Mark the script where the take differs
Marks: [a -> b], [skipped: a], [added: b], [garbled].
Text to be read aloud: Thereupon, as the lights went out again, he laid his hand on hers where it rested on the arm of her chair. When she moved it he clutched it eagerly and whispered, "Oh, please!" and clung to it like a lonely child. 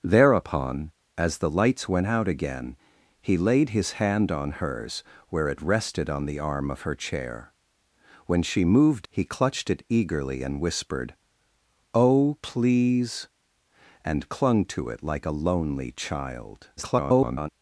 Thereupon, as the lights went out again, he laid his hand on hers where it rested on the arm of her chair. When she moved [skipped: it] he clutched it eagerly and whispered, "Oh, please!" and clung to it like a lonely child. [garbled]